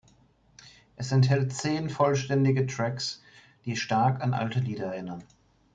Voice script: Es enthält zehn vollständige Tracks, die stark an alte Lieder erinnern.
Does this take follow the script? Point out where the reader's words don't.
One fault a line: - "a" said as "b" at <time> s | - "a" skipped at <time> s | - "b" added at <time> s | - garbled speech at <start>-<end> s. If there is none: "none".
none